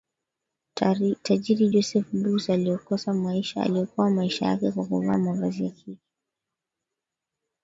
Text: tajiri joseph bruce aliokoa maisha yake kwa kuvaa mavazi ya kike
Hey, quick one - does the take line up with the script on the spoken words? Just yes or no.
yes